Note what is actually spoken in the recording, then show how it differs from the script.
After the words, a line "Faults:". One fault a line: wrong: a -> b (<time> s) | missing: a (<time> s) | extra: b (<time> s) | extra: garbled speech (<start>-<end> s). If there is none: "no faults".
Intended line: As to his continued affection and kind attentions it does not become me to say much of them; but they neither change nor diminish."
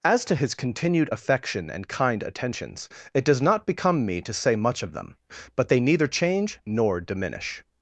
As to his continued affection and kind attentions it does not become me to say much of them; but they neither change nor diminish."
Faults:
no faults